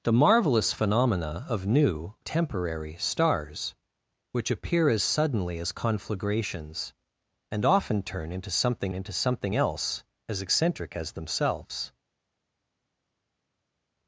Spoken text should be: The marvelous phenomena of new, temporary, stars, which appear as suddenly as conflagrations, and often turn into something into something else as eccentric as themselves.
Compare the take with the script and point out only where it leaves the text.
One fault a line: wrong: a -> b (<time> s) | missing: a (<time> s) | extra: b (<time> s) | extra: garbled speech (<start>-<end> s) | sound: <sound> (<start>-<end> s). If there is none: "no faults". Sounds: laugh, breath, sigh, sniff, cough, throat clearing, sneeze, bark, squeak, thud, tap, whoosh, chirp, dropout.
no faults